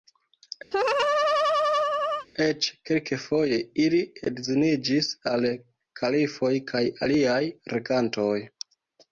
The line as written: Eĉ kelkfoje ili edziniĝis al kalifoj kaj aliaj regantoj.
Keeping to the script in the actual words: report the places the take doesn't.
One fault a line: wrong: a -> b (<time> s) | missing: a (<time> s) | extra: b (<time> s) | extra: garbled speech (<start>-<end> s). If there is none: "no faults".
no faults